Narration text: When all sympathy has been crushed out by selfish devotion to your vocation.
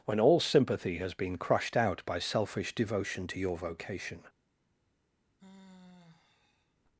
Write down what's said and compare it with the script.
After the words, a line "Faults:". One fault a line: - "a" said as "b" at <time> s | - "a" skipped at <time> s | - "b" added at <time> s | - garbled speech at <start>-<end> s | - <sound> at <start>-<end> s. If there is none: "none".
When all sympathy has been crushed out by selfish devotion to your vocation.
Faults:
- sigh at 5.4-6.8 s